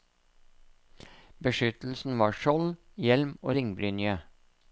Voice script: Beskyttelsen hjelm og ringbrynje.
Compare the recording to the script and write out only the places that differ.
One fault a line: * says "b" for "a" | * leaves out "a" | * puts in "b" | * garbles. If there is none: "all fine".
* puts in "var skjold"